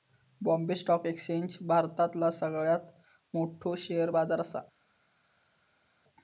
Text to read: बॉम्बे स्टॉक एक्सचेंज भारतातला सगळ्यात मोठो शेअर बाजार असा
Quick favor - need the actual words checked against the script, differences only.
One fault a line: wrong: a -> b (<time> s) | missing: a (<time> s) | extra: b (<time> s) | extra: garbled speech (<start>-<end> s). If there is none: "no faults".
no faults